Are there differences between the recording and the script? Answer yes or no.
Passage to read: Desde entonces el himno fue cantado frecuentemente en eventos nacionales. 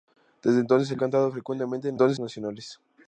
yes